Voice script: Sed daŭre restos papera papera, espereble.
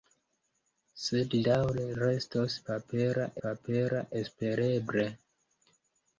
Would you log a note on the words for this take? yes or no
no